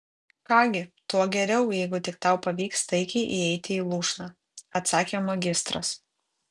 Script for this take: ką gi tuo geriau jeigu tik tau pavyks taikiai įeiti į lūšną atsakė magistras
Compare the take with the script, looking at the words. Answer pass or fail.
pass